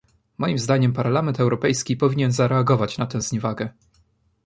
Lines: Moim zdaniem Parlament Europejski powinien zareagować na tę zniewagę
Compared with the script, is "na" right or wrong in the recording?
right